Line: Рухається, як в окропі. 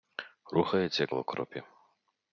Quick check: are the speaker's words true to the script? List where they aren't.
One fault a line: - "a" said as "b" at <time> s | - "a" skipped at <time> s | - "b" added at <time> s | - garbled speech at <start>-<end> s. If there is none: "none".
none